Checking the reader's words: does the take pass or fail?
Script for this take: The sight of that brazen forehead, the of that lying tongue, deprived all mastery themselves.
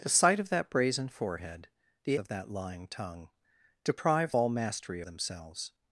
pass